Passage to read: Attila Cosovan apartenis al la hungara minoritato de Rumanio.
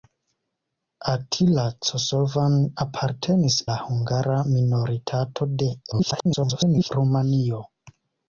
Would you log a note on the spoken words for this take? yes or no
yes